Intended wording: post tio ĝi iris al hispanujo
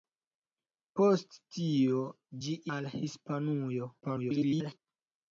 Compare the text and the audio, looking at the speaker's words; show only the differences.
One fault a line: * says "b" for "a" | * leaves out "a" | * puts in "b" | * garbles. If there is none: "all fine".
* leaves out "iris"
* garbles